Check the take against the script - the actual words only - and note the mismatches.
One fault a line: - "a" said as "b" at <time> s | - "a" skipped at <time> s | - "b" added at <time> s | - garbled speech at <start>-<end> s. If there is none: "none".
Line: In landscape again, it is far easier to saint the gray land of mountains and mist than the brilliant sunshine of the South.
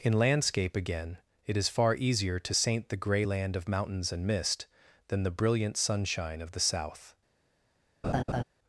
none